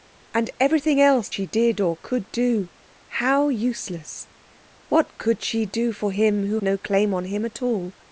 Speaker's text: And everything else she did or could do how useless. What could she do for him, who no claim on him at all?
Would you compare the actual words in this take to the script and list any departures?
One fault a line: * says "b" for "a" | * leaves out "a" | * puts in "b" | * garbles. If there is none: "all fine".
all fine